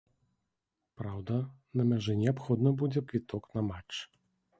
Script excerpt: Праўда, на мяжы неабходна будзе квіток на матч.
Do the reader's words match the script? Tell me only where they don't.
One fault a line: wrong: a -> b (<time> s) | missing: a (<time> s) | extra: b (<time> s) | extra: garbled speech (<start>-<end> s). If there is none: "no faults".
no faults